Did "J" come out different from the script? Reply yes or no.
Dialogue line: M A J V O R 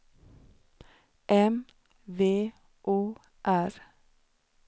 yes